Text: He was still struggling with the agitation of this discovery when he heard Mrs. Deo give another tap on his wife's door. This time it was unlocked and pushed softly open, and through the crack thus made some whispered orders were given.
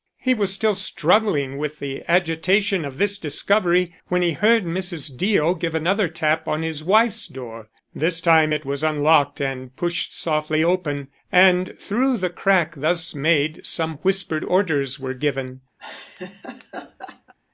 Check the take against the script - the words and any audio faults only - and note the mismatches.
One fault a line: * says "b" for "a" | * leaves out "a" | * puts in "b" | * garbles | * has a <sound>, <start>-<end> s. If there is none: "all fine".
* has a laugh, 15.8-17.3 s